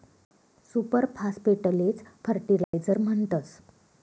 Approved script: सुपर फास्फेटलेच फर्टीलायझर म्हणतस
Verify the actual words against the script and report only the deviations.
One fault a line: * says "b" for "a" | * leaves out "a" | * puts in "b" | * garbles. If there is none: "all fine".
all fine